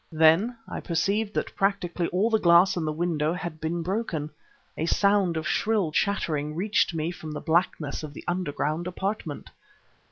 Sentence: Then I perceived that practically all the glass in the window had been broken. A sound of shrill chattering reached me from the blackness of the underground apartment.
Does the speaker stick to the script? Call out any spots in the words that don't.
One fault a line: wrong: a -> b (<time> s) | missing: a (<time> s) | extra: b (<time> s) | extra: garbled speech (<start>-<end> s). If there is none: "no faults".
no faults